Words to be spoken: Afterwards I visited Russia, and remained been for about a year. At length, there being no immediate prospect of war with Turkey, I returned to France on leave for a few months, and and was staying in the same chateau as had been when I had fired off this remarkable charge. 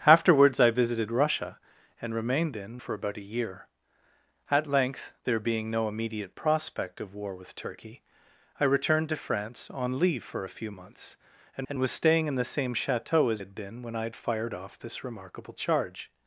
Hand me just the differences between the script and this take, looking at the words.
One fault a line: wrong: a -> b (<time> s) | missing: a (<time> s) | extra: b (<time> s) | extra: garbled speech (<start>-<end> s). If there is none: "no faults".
no faults